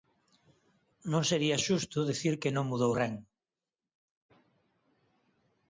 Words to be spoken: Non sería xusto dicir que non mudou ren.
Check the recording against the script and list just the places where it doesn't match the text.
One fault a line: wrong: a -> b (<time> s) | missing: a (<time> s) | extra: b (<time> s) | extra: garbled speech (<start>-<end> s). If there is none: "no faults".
no faults